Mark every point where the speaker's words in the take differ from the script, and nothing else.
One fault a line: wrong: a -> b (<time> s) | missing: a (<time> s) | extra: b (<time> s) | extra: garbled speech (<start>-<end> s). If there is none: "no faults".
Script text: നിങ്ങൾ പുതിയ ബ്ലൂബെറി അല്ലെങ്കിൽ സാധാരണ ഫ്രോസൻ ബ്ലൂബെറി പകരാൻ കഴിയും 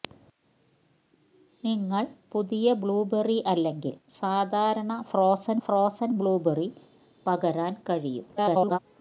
extra: ഫ്രോസൻ (5.7 s)
extra: garbled speech (8.4-8.8 s)